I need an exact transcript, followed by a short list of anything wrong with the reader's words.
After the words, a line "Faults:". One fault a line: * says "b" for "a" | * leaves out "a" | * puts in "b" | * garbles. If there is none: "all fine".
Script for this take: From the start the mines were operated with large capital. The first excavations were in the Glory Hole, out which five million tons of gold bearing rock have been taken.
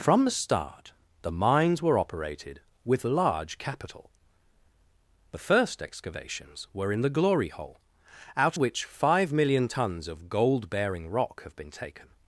From the start the mines were operated with large capital. The first excavations were in the Glory Hole, out which five million tons of gold bearing rock have been taken.
Faults:
all fine